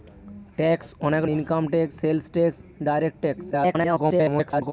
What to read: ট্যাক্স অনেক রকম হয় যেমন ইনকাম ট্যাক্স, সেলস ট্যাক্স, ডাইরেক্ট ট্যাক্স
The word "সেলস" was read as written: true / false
true